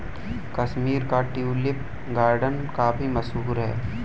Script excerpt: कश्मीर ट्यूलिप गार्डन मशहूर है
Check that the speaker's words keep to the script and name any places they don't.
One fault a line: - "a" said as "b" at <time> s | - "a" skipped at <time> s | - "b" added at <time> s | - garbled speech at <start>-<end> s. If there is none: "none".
- "का" added at 1.1 s
- "काफी" added at 2.8 s